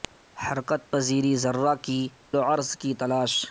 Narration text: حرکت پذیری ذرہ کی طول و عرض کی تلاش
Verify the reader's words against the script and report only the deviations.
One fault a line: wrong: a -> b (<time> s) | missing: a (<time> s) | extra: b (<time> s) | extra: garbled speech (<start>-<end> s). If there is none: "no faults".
missing: طول (2.0 s)